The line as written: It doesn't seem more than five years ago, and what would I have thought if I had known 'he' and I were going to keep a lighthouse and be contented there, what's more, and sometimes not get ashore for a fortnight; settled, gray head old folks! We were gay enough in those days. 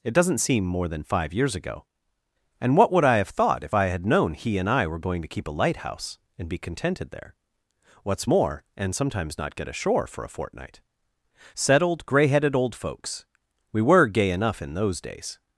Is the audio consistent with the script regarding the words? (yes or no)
no